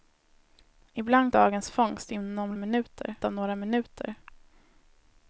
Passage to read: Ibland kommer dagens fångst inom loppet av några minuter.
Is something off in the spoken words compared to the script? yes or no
yes